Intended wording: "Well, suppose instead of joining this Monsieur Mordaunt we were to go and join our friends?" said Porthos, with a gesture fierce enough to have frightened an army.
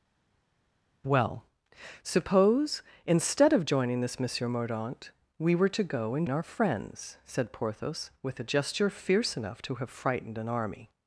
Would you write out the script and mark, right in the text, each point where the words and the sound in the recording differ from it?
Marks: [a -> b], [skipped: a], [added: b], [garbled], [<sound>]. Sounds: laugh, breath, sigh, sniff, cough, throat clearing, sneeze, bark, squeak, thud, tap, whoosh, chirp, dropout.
"Well, suppose instead of joining this Monsieur Mordaunt we were to go and [skipped: join] our friends?" said Porthos, with a gesture fierce enough to have frightened an army.